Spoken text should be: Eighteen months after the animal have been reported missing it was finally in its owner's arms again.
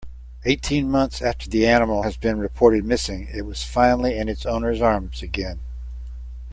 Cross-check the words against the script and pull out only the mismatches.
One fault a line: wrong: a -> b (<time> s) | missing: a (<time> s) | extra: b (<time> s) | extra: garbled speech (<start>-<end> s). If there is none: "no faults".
wrong: have -> has (2.0 s)